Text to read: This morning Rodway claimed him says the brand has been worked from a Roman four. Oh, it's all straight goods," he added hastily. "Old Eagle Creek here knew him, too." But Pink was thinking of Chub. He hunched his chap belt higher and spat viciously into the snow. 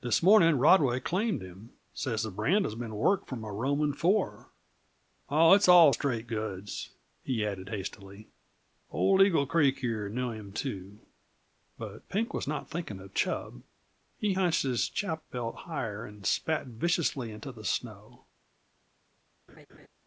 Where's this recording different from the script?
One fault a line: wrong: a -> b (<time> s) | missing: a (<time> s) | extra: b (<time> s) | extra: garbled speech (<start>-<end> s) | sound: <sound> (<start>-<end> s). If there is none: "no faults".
extra: not (12.5 s)
sound: laugh (19.5-19.9 s)